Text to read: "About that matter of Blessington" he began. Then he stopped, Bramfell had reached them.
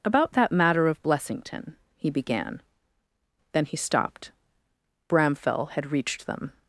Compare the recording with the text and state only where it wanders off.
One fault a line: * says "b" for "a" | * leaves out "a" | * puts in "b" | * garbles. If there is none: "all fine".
all fine